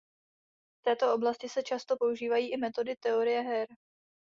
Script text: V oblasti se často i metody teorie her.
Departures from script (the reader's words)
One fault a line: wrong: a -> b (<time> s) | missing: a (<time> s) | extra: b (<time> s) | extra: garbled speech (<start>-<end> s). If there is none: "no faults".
extra: této (0.8 s)
extra: používají (2.0 s)